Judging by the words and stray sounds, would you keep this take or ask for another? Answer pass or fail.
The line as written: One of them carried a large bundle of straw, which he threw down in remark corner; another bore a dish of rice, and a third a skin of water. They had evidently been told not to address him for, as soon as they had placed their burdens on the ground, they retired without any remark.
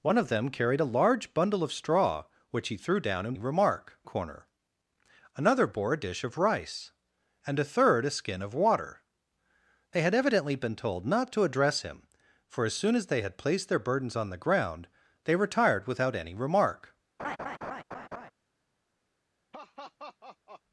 fail